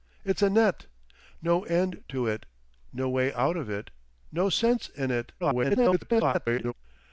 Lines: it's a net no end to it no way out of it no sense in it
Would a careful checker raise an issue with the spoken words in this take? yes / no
yes